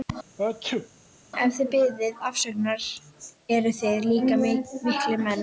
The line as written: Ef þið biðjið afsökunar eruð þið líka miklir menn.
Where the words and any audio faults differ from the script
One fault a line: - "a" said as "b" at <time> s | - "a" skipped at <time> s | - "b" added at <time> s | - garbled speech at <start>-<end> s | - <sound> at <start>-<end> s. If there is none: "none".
- sneeze at 0.4-0.9 s